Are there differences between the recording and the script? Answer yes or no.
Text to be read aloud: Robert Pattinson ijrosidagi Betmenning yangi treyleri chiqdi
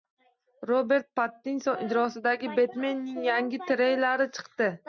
no